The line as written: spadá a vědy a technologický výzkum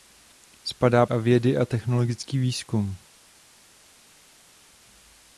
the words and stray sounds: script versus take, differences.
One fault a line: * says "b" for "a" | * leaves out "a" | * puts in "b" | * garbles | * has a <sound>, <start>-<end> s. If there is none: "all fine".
all fine